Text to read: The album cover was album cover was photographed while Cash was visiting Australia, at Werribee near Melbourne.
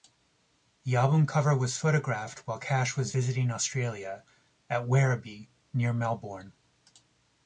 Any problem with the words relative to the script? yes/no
yes